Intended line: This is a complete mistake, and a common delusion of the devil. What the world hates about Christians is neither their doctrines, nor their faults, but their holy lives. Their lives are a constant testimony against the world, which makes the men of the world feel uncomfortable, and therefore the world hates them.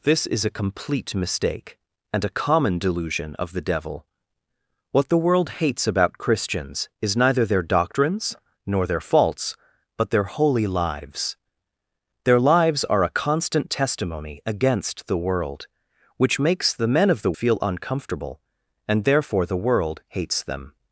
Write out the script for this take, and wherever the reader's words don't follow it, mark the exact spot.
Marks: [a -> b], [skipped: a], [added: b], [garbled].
This is a complete mistake, and a common delusion of the devil. What the world hates about Christians is neither their doctrines, nor their faults, but their holy lives. Their lives are a constant testimony against the world, which makes the men of the [skipped: world] feel uncomfortable, and therefore the world hates them.